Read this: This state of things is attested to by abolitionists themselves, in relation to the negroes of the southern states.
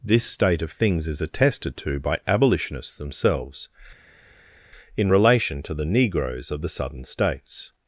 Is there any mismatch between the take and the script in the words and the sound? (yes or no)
no